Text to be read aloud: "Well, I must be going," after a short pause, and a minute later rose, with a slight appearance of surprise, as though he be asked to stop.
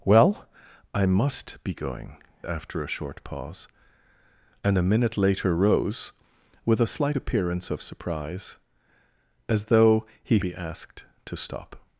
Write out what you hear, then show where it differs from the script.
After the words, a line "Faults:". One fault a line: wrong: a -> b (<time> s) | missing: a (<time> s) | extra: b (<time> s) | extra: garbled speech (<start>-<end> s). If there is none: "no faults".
"Well, I must be going," after a short pause, and a minute later rose, with a slight appearance of surprise, as though he be asked to stop.
Faults:
no faults